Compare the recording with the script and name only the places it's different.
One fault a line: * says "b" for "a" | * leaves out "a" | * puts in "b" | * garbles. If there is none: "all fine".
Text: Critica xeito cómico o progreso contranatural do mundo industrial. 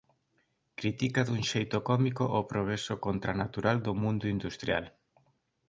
* puts in "dun"